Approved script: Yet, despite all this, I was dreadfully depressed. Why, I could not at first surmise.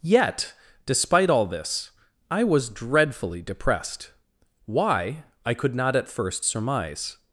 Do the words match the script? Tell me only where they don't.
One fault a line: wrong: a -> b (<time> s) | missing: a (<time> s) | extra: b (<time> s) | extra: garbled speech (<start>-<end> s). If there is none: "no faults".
no faults